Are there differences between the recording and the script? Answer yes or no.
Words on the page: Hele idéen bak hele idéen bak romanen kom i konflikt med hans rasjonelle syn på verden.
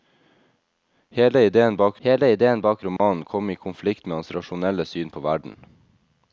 no